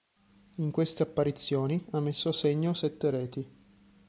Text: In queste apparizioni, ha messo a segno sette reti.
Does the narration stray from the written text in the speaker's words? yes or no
no